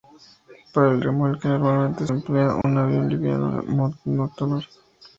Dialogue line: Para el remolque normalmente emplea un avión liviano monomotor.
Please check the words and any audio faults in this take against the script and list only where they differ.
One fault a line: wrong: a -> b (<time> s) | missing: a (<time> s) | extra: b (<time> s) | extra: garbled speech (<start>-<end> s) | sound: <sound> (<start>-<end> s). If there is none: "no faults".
sound: dropout (2.6-2.6 s)